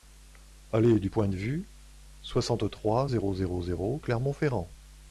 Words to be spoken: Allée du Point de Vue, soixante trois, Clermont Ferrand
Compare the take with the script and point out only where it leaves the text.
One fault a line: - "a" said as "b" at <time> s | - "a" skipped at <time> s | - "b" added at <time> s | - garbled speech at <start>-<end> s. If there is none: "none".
- "zéro zéro zéro" added at 3.1 s